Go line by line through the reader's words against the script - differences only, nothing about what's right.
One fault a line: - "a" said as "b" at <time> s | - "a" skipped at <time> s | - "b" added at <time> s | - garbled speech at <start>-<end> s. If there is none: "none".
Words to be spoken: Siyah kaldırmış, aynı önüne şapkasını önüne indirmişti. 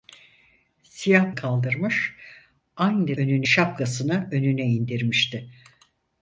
none